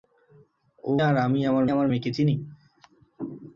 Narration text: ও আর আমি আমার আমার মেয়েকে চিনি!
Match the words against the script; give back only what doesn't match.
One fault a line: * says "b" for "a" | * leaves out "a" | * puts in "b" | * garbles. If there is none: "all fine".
all fine